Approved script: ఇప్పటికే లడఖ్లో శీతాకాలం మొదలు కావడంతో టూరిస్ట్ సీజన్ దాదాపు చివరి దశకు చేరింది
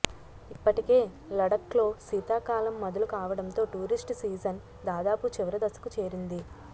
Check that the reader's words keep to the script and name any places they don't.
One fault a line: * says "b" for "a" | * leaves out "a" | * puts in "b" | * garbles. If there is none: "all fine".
all fine